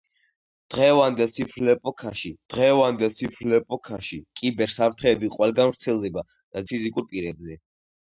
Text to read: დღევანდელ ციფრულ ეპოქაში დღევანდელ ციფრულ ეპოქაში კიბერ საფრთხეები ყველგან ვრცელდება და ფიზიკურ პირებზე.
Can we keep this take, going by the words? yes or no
yes